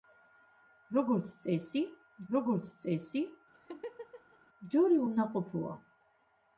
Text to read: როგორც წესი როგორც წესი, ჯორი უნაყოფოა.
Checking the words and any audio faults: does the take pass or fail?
fail